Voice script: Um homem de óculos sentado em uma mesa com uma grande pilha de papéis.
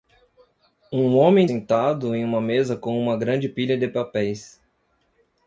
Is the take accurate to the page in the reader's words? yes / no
no